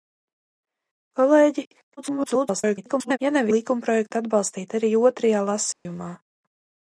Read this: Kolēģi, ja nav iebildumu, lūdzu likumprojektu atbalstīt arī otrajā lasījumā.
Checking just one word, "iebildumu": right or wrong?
wrong